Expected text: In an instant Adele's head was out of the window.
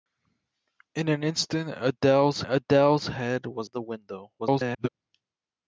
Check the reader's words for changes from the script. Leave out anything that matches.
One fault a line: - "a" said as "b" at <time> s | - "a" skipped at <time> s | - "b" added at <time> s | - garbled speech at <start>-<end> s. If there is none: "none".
- "Adele's" added at 2.5 s
- "out" skipped at 3.7 s
- garbled speech at 4.4-4.9 s